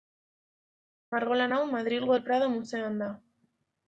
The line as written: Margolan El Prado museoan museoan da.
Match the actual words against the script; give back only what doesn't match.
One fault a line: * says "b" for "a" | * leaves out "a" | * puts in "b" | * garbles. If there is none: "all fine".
* puts in "hau Madrilgo"
* leaves out "museoan"